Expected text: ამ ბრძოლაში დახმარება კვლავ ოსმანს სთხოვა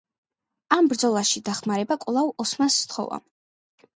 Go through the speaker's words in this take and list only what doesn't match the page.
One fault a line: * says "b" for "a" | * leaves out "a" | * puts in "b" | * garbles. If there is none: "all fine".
all fine